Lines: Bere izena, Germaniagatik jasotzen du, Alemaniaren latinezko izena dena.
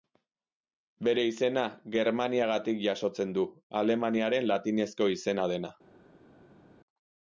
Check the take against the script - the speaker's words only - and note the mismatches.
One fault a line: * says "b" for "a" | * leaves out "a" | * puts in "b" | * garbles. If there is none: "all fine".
all fine